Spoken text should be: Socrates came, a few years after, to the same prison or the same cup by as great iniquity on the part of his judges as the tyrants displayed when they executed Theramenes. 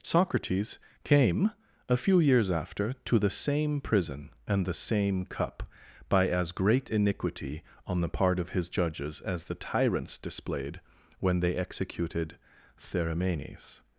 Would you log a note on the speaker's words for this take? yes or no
yes